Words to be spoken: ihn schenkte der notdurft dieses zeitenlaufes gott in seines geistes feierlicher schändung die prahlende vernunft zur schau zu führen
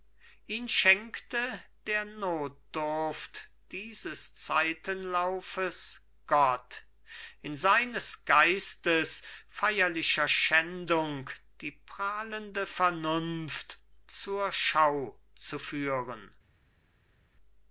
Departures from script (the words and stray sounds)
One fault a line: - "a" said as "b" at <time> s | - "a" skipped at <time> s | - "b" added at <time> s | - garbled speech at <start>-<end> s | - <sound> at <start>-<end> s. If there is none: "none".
none